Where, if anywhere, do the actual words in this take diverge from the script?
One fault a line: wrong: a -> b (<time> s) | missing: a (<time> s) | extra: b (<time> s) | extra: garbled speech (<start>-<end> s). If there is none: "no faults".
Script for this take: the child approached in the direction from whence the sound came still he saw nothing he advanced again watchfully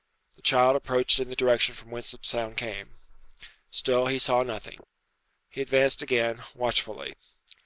no faults